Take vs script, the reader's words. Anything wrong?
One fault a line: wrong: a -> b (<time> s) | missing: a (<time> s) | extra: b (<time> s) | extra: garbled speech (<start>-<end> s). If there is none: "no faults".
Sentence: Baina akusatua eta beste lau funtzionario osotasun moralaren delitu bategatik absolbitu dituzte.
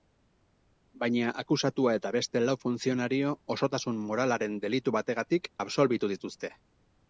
no faults